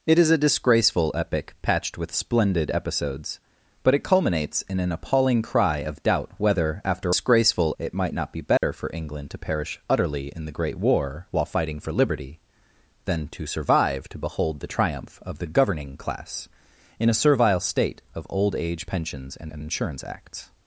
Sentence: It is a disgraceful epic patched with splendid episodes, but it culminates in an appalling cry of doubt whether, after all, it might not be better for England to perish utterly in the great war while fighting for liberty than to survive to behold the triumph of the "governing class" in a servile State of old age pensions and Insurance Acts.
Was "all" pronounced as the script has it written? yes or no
no